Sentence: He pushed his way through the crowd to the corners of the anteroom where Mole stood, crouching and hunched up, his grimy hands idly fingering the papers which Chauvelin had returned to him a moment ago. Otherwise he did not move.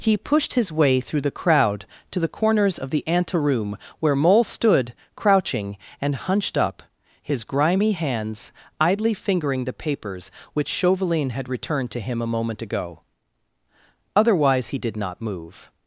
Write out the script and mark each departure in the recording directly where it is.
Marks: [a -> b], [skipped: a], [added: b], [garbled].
He pushed his way through the crowd to the corners of the anteroom where Mole stood, crouching and hunched up, his grimy hands idly fingering the papers which Chauvelin had returned to him a moment ago. Otherwise he did not move.